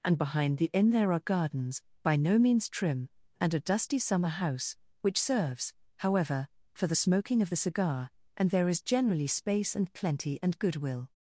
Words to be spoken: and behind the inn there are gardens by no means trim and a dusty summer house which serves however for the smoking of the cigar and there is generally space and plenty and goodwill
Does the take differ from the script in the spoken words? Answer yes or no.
no